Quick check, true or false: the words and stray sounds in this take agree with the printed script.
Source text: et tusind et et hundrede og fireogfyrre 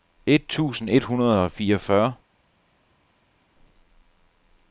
false